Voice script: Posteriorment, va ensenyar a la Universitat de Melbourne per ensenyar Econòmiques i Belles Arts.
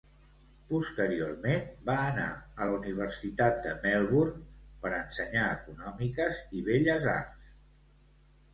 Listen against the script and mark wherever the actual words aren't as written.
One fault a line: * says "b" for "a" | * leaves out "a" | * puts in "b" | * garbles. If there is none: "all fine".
* says "anar" for "ensenyar"